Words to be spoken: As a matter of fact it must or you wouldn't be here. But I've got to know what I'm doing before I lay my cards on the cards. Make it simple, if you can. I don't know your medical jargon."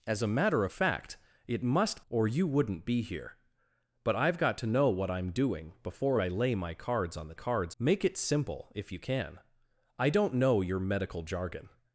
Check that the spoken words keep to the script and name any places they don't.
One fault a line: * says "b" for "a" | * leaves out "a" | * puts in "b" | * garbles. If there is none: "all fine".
all fine